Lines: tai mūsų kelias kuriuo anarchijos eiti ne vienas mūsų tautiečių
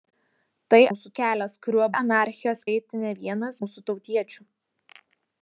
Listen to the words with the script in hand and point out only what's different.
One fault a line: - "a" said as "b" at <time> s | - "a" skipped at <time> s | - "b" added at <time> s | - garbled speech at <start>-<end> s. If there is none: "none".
none